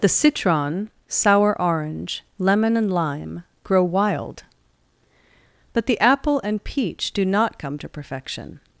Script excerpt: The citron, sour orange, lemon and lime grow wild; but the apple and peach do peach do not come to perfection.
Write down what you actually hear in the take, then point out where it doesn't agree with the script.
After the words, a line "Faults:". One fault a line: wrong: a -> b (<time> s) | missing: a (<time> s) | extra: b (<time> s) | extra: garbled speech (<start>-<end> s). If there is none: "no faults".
The citron, sour orange, lemon and lime grow wild; but the apple and peach do not come to perfection.
Faults:
missing: peach do (7.2 s)